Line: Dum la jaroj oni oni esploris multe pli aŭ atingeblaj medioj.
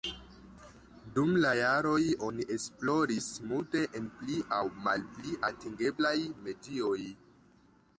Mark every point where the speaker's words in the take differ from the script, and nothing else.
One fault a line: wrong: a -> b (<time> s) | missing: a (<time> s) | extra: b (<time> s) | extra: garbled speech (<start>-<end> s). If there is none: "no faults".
missing: oni (2.5 s)
extra: en (4.0 s)
extra: malpli (4.9 s)